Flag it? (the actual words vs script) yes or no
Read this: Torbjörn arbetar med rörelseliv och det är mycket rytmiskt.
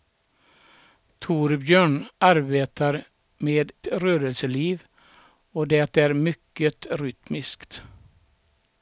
no